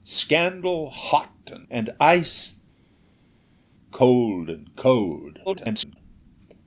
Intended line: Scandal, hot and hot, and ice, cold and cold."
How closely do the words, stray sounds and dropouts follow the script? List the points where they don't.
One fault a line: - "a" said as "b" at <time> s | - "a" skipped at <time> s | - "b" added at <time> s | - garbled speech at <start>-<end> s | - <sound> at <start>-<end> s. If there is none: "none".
- "hot" skipped at 1.7 s
- garbled speech at 5.5-6.0 s